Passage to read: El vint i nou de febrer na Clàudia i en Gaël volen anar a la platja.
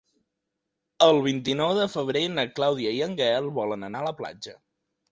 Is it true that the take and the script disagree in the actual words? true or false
false